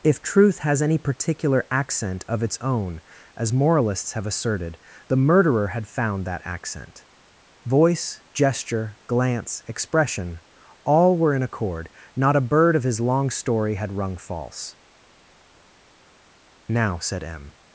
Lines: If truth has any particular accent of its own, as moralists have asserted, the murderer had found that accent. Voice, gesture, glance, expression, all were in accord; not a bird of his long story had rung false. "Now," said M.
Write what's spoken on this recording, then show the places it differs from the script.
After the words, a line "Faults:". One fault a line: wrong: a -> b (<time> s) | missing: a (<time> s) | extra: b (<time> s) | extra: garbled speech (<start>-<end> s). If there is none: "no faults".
If truth has any particular accent of its own, as moralists have asserted, the murderer had found that accent. Voice, gesture, glance, expression, all were in accord; not a bird of his long story had rung false. "Now," said M.
Faults:
no faults